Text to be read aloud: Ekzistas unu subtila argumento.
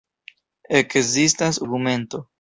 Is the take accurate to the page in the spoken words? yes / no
no